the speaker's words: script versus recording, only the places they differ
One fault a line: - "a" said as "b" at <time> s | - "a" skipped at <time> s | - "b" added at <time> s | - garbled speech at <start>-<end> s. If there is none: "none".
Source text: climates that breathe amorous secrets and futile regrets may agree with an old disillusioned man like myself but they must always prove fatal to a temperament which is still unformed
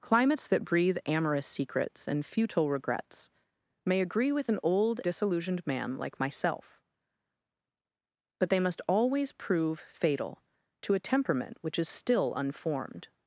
none